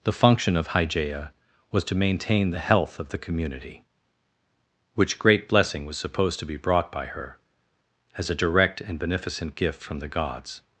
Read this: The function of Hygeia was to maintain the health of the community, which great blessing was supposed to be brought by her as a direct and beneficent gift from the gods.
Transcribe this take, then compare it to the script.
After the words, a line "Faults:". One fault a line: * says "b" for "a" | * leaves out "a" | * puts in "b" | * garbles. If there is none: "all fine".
The function of Hygeia was to maintain the health of the community, which great blessing was supposed to be brought by her as a direct and beneficent gift from the gods.
Faults:
all fine